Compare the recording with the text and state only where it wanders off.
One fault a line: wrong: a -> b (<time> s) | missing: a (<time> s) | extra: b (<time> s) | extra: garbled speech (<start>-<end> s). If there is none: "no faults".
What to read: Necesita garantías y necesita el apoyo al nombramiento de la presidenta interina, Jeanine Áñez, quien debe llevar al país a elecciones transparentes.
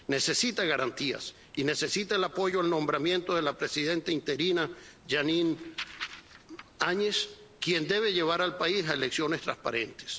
no faults